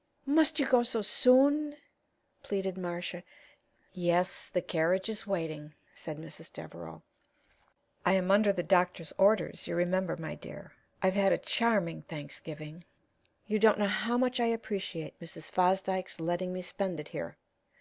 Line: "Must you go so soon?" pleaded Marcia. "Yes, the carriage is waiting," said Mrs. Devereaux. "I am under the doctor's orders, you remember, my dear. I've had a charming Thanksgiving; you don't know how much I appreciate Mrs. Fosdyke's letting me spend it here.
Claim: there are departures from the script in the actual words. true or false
false